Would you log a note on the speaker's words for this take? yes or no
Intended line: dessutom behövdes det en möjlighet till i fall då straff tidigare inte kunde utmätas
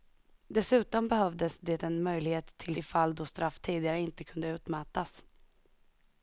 no